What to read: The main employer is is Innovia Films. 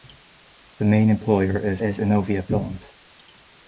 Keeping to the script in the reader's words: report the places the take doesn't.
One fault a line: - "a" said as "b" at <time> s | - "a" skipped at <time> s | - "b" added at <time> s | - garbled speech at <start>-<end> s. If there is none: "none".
none